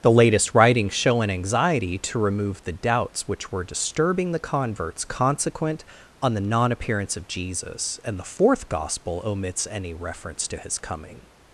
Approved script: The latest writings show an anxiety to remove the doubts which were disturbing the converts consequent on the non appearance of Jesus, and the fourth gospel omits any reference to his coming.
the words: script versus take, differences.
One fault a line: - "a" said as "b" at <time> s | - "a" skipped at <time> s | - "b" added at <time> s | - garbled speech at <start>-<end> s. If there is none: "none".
none